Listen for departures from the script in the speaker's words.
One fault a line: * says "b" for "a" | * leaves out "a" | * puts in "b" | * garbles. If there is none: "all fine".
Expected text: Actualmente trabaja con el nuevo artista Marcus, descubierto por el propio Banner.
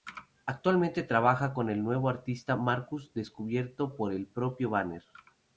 all fine